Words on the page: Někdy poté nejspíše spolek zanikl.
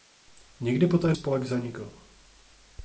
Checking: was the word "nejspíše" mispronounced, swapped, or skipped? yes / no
yes